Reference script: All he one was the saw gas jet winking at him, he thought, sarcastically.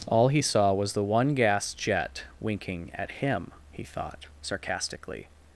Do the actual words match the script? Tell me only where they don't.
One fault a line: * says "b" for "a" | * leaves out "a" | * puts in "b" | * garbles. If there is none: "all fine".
* says "saw" for "one"
* says "one" for "saw"